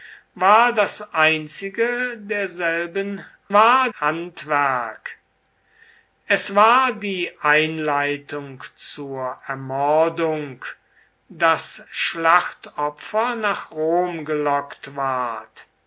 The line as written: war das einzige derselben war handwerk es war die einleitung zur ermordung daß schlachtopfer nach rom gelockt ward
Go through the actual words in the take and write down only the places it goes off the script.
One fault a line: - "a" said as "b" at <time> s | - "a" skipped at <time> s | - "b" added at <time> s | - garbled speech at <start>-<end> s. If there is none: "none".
none